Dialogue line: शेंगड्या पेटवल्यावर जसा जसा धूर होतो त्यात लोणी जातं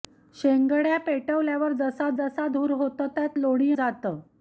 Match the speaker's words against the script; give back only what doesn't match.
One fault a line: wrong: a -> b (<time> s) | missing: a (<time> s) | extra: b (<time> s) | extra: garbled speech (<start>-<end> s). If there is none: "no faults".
no faults